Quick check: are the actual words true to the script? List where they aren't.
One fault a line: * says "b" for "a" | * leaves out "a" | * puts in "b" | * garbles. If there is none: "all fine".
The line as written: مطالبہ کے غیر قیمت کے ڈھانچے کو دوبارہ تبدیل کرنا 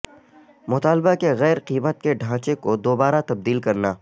all fine